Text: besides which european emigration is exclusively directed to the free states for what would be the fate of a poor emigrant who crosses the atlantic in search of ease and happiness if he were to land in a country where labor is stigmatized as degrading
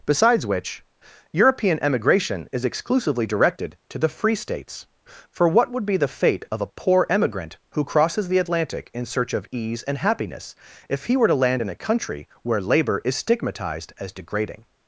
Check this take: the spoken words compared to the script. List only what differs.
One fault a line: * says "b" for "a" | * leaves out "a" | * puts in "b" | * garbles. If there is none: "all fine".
all fine